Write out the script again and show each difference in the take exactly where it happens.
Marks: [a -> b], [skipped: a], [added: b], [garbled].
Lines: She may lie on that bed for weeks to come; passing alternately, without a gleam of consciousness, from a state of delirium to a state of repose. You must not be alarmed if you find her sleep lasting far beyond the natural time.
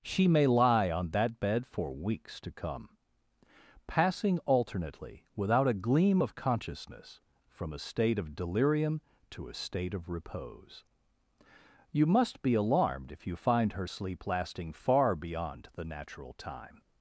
She may lie on that bed for weeks to come; passing alternately, without a gleam of consciousness, from a state of delirium to a state of repose. You must [skipped: not] be alarmed if you find her sleep lasting far beyond the natural time.